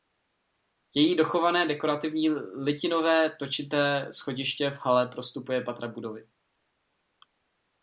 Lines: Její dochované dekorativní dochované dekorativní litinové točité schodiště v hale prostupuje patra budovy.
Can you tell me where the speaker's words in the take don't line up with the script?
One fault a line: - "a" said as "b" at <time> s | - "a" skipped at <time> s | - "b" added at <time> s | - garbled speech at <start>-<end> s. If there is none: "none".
- "dochované dekorativní" skipped at 2.3 s